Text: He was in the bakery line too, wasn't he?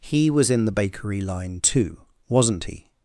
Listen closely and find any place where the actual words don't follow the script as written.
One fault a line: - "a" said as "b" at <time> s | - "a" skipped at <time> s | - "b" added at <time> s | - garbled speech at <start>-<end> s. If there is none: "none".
none